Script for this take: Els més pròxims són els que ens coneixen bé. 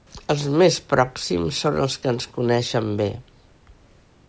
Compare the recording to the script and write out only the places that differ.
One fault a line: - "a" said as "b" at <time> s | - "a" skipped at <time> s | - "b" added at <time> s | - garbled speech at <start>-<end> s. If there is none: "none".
none